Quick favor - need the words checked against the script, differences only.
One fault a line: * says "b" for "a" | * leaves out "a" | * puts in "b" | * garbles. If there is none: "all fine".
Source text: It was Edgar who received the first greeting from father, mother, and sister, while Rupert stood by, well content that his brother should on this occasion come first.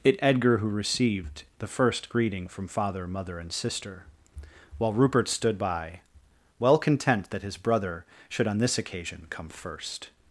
* leaves out "was"